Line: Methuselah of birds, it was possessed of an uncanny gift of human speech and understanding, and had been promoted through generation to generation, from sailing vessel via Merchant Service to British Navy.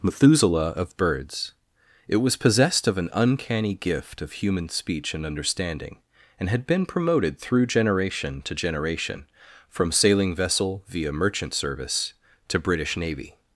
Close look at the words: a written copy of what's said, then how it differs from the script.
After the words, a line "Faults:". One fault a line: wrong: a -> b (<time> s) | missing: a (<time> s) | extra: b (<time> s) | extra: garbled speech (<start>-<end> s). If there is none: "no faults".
Methuselah of birds, it was possessed of an uncanny gift of human speech and understanding, and had been promoted through generation to generation, from sailing vessel via Merchant Service to British Navy.
Faults:
no faults